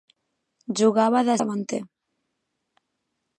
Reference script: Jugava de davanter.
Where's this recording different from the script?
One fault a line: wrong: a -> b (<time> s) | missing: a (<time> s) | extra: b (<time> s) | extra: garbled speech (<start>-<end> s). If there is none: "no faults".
no faults